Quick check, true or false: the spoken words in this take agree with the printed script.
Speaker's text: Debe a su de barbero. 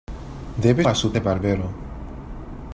true